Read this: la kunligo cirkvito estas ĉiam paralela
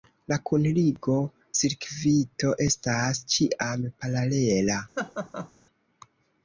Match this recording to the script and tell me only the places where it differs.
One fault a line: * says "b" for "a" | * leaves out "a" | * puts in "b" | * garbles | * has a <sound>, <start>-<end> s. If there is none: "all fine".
* has a laugh, 5.0-5.5 s